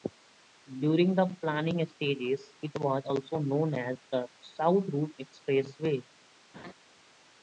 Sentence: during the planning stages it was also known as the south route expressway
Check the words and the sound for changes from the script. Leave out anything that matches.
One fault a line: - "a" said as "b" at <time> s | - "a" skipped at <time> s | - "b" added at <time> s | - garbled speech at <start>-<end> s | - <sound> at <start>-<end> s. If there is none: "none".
- laugh at 6.5-6.7 s